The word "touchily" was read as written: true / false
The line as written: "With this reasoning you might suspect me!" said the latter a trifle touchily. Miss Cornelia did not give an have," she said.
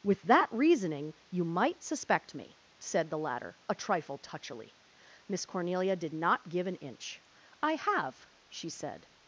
true